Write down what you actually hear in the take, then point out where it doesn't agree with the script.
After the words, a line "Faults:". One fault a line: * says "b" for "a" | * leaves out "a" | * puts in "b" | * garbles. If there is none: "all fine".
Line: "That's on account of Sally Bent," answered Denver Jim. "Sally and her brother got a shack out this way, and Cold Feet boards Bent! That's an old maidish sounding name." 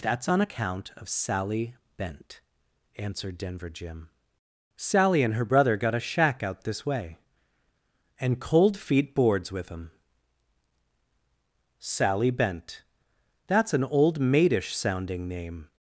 "That's on account of Sally Bent," answered Denver Jim. "Sally and her brother got a shack out this way, and Cold Feet boards with 'em." "Sally Bent! That's an old maidish sounding name."
Faults:
* puts in "with em Sally"